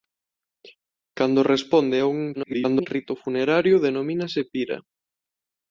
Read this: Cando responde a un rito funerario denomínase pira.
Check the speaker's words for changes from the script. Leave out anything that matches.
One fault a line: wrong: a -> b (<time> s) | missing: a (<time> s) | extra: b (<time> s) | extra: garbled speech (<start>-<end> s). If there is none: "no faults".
extra: garbled speech (2.3-2.9 s)